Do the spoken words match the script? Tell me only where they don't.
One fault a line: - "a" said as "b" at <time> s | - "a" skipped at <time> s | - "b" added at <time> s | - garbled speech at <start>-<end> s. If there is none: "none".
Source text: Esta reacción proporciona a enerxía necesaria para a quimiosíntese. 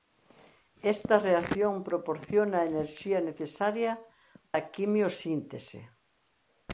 - "para" skipped at 3.9 s